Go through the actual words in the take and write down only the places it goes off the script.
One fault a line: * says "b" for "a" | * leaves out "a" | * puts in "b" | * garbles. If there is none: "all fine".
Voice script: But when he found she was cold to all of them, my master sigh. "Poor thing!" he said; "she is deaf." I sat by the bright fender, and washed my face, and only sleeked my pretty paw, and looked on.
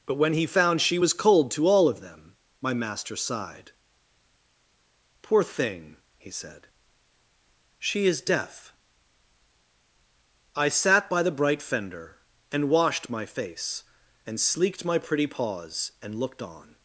* says "sighed" for "sigh"
* leaves out "only"
* says "paws" for "paw"